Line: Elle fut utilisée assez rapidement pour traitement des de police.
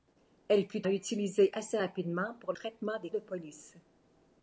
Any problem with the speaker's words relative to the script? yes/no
no